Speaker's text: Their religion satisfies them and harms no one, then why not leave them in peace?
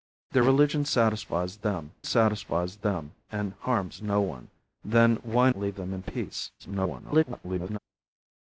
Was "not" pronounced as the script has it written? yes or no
no